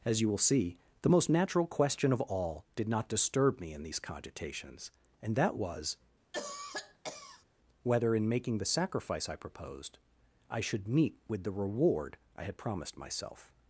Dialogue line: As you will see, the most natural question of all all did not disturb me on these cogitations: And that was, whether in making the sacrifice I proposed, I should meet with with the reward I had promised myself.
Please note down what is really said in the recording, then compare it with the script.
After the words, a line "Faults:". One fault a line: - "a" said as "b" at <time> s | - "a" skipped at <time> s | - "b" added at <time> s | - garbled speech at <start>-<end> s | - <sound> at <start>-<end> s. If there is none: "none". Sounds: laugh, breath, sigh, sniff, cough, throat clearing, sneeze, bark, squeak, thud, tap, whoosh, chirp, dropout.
As you will see, the most natural question of all did not disturb me in these cogitations: And that was, whether in making the sacrifice I proposed, I should meet with the reward I had promised myself.
Faults:
- "all" skipped at 2.6 s
- "on" said as "in" at 3.7 s
- cough at 6.3-7.4 s
- "with" skipped at 11.4 s